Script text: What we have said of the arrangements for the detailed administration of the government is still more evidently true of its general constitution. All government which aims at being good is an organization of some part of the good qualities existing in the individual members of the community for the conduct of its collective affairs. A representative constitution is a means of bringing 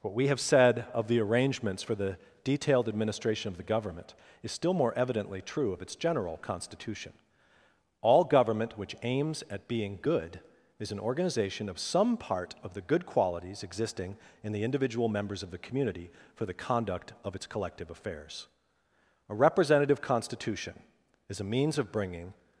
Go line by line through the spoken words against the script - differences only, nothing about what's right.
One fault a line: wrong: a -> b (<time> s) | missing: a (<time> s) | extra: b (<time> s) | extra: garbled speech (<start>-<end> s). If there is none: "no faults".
no faults